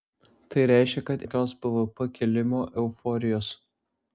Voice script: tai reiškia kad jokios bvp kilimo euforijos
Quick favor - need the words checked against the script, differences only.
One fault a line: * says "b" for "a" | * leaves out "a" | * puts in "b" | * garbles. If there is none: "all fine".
all fine